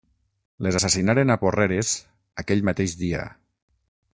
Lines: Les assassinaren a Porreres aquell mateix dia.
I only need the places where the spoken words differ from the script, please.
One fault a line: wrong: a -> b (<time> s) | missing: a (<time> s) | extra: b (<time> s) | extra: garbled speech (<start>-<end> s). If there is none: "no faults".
no faults